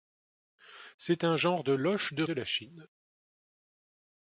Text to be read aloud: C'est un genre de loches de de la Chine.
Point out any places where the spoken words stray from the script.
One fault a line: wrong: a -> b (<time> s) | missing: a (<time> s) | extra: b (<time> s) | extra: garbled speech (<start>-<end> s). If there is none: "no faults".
no faults